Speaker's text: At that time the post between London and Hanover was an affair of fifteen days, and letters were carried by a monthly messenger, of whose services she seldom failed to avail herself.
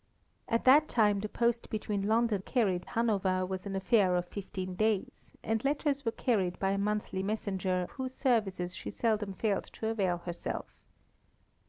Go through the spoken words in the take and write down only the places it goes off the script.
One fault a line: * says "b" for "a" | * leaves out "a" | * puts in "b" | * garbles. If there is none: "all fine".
* says "carried" for "and"
* leaves out "of"